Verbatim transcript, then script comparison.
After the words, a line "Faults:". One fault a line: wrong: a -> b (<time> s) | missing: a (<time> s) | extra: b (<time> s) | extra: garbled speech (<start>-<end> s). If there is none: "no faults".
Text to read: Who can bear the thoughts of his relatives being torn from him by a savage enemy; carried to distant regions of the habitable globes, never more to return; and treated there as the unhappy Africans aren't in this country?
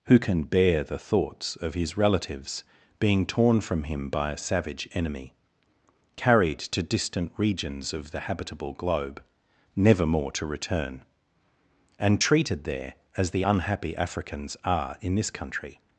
Who can bear the thoughts of his relatives being torn from him by a savage enemy; carried to distant regions of the habitable globe, never more to return; and treated there as the unhappy Africans are in this country?
Faults:
wrong: globes -> globe (8.7 s)
wrong: aren't -> are (14.6 s)